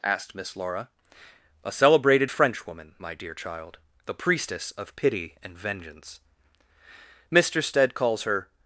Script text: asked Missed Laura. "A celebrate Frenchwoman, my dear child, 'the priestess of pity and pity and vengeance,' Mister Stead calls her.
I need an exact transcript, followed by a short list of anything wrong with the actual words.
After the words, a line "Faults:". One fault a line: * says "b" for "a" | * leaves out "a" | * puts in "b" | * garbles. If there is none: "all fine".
asked Miss Laura. "A celebrated Frenchwoman, my dear child, 'the priestess of pity and vengeance,' Mister Stead calls her.
Faults:
* says "Miss" for "Missed"
* says "celebrated" for "celebrate"
* leaves out "pity and"